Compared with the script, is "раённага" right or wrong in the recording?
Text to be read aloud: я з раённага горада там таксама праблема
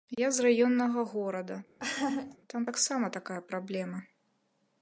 right